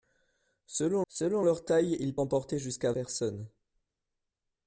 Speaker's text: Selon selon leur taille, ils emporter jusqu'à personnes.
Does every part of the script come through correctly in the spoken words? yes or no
yes